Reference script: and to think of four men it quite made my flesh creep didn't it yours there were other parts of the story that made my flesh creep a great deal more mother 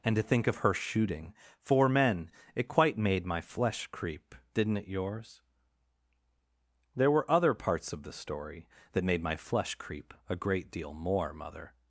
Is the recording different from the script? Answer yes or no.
yes